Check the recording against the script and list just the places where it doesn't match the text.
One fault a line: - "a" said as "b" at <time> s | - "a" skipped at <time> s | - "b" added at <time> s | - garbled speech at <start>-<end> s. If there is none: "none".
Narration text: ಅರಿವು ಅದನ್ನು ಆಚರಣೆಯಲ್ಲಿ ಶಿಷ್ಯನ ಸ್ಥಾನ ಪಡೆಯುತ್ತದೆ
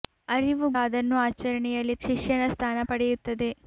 none